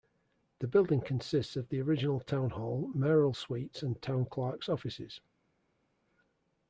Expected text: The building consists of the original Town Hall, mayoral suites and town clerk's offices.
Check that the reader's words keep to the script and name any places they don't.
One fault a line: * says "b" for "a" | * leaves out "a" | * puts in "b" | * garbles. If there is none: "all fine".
all fine